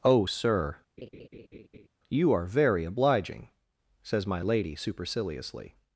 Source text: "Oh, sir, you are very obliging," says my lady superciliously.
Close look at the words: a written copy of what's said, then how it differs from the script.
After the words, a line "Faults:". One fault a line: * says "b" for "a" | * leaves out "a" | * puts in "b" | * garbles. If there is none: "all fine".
"Oh, sir, you are very obliging," says my lady superciliously.
Faults:
all fine